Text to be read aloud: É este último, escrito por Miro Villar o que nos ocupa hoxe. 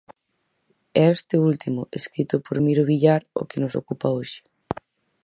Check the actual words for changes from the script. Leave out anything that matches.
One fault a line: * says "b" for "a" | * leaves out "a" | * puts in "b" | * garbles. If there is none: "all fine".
all fine